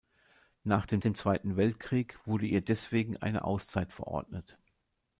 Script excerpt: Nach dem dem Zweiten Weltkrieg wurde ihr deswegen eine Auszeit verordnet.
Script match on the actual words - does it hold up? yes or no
yes